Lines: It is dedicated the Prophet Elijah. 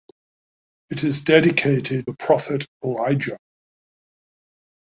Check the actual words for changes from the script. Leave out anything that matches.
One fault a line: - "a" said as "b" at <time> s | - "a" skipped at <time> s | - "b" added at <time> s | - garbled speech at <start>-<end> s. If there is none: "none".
none